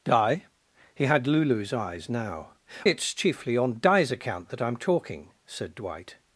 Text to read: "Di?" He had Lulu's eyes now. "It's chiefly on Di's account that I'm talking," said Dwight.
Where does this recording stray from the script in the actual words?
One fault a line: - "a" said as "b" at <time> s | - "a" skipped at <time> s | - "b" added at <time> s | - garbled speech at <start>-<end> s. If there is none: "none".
none